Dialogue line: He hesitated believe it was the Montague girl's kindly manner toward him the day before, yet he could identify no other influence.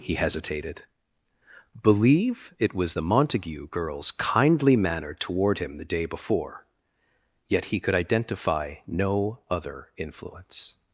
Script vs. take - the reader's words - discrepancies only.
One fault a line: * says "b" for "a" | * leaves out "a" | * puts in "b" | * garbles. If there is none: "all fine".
all fine